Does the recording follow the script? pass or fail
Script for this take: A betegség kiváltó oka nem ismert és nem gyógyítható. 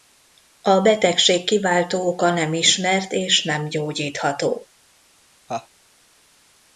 pass